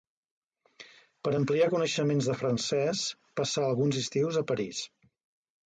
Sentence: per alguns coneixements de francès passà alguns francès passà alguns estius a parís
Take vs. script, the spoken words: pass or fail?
fail